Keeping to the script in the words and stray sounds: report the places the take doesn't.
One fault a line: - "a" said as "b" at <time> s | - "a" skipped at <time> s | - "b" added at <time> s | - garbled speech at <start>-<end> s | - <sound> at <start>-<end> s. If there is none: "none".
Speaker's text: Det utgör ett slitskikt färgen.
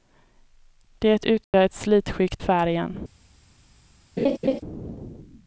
- dropout at 1.4-1.5 s
- laugh at 4.2-4.6 s